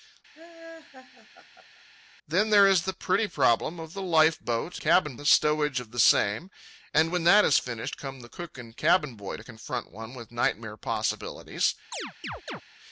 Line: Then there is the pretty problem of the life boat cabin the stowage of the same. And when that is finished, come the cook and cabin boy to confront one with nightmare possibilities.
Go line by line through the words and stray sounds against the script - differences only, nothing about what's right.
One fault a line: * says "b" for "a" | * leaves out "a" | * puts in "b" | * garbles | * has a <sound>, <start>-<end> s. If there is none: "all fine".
* has a laugh, 0.3-1.8 s
* has a chirp, 11.9-12.6 s